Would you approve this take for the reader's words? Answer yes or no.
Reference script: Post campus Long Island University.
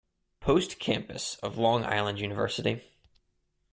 no